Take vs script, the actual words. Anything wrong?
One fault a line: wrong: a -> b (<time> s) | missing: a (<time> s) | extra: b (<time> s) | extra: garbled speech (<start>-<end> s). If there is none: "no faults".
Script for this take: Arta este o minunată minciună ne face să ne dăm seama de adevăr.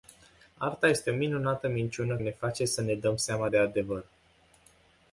no faults